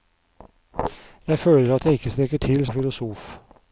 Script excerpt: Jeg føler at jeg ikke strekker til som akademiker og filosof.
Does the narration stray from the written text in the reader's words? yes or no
yes